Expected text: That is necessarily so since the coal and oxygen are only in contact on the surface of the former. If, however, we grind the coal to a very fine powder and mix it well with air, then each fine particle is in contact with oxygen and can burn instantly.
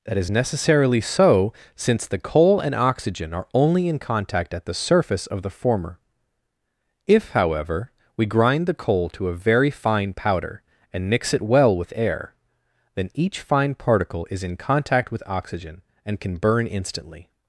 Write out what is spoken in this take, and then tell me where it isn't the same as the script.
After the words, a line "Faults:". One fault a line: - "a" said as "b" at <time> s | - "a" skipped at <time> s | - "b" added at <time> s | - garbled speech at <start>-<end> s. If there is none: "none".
That is necessarily so since the coal and oxygen are only in contact at the surface of the former. If, however, we grind the coal to a very fine powder and mix it well with air, then each fine particle is in contact with oxygen and can burn instantly.
Faults:
- "on" said as "at" at 4.5 s